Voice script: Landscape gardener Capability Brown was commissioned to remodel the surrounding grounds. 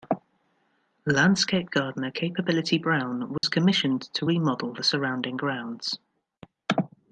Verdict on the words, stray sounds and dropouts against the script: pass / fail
fail